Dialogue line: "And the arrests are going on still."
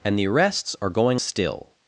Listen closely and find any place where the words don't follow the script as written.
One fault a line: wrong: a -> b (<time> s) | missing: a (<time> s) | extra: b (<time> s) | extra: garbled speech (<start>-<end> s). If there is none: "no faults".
missing: on (1.2 s)